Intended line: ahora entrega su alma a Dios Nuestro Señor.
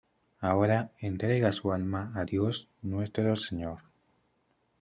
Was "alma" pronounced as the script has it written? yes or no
yes